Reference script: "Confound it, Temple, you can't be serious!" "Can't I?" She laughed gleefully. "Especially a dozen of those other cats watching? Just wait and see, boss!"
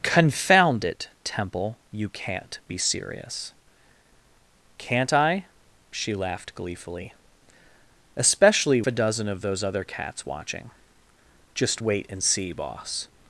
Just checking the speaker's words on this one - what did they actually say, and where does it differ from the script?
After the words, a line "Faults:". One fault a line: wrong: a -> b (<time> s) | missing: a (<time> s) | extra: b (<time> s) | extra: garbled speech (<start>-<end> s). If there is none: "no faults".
"Confound it, Temple, you can't be serious!" "Can't I?" She laughed gleefully. "Especially a dozen of those other cats watching? Just wait and see, boss!"
Faults:
no faults